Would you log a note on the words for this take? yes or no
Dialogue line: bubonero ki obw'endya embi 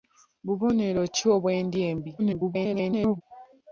yes